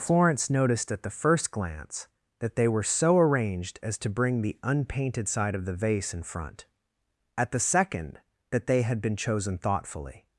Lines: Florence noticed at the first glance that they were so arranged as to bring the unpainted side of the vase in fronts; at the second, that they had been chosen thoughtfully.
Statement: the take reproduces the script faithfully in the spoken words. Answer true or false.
false